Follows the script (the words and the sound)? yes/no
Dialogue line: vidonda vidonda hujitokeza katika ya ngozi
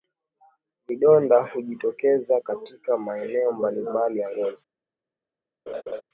no